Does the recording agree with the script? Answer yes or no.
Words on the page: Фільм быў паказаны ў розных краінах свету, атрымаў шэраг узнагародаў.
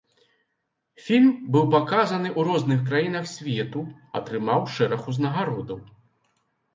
yes